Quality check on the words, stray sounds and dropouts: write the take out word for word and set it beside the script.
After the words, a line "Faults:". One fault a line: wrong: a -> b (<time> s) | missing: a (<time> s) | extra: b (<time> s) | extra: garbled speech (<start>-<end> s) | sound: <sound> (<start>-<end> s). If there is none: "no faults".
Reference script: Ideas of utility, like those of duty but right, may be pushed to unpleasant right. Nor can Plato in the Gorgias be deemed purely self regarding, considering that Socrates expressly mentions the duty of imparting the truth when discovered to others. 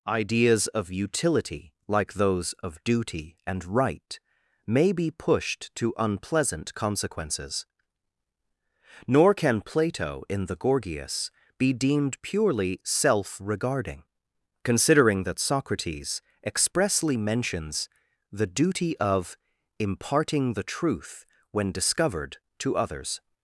Ideas of utility, like those of duty and right, may be pushed to unpleasant consequences. Nor can Plato in the Gorgias be deemed purely self regarding, considering that Socrates expressly mentions the duty of imparting the truth when discovered to others.
Faults:
wrong: but -> and (3.5 s)
wrong: right -> consequences (6.7 s)